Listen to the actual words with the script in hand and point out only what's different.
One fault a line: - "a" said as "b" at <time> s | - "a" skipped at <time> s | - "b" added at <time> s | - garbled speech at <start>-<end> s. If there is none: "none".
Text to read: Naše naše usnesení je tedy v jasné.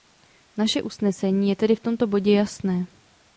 - "naše" skipped at 0.8 s
- "tomto bodě" added at 1.8 s